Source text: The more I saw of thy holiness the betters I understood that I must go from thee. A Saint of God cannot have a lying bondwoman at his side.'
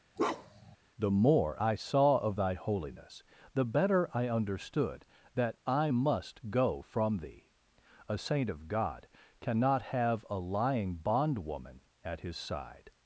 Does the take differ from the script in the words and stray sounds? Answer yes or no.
yes